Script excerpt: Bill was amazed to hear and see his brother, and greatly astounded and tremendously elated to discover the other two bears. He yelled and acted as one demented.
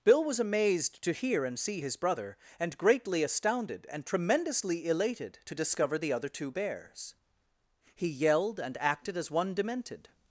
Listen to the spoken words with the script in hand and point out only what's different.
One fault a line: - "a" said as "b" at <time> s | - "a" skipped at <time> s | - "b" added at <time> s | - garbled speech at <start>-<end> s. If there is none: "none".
none